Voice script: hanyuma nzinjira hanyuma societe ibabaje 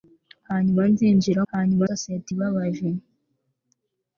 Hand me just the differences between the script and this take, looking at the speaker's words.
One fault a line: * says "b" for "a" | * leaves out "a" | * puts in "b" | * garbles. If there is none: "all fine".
all fine